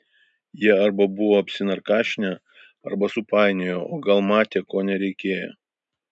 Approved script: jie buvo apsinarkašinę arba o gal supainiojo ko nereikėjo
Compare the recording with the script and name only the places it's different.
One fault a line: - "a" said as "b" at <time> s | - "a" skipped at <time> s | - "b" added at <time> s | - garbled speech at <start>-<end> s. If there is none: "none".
- "arba" added at 0.8 s
- "supainiojo" added at 3.1 s
- "supainiojo" said as "matė" at 4.3 s